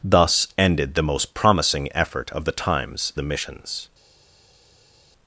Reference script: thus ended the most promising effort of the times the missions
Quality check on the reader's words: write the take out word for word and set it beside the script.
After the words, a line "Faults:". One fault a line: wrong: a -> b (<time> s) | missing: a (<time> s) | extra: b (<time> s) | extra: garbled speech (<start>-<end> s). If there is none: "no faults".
thus ended the most promising effort of the times the missions
Faults:
no faults